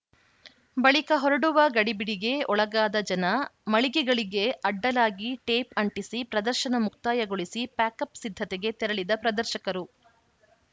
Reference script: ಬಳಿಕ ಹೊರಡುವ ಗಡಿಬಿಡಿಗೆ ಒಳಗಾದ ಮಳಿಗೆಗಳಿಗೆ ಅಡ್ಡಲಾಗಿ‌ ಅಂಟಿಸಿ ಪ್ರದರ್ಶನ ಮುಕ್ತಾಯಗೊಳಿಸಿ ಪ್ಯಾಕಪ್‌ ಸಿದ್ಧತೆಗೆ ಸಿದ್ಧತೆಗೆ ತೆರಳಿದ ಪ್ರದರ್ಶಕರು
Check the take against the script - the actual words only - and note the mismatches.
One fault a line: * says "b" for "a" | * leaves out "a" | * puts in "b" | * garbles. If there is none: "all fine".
* puts in "ಜನ"
* puts in "ಟೇಪ್"
* leaves out "ಸಿದ್ಧತೆಗೆ"